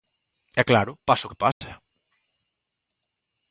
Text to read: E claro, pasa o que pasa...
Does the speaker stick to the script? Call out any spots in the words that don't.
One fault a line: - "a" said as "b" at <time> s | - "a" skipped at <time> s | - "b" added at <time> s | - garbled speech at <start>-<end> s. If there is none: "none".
none